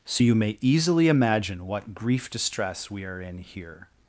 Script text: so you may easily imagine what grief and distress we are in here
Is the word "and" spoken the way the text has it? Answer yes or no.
no